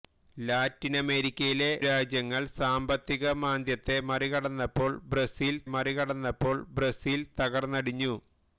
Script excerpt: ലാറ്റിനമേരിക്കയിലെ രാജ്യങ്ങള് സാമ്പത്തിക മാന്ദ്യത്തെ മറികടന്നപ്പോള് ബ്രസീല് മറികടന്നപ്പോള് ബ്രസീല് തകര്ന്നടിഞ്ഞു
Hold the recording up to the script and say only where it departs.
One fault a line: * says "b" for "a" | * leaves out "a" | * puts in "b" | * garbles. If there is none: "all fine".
all fine